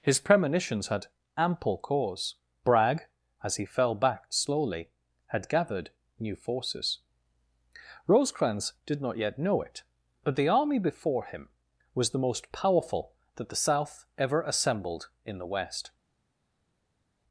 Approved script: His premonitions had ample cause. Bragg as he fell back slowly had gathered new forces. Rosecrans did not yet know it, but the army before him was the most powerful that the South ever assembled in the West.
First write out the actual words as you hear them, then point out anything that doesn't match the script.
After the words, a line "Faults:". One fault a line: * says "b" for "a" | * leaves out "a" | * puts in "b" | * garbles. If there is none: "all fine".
His premonitions had ample cause. Bragg as he fell back slowly had gathered new forces. Rosecrans did not yet know it, but the army before him was the most powerful that the South ever assembled in the West.
Faults:
all fine